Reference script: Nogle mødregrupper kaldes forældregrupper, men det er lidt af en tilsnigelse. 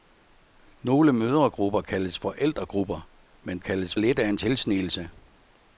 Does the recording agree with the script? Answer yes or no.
no